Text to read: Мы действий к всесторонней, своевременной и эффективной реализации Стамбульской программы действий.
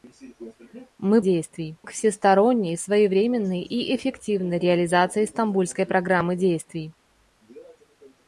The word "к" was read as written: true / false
true